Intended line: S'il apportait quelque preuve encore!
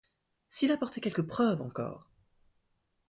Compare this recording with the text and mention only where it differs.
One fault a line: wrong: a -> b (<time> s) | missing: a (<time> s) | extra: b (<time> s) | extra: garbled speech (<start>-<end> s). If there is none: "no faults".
no faults